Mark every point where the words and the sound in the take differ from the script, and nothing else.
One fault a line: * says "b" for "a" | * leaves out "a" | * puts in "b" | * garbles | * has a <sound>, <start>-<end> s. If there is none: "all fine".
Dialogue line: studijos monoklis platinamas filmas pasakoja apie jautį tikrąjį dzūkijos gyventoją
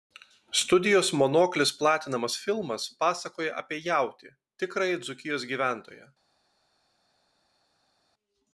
all fine